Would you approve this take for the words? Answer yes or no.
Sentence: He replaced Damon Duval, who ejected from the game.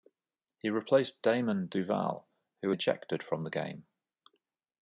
yes